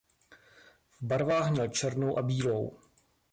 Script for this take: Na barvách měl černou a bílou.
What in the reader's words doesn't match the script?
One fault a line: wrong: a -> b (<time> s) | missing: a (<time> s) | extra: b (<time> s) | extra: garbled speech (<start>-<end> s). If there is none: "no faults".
wrong: Na -> V (0.9 s)